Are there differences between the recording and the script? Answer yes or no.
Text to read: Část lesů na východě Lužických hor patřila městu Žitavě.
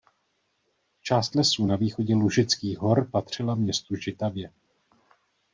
no